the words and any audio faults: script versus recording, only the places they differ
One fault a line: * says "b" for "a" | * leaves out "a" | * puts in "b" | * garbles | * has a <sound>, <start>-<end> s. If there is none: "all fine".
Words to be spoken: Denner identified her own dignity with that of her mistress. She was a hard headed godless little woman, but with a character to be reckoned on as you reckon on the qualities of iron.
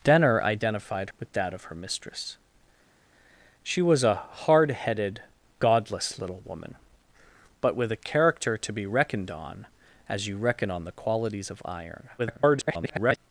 * leaves out "her own dignity"
* garbles